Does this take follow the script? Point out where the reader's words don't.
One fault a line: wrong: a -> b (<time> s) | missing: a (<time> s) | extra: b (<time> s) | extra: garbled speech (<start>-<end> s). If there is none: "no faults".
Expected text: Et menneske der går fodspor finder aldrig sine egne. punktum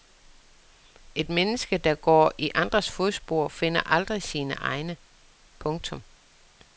extra: i andres (2.4 s)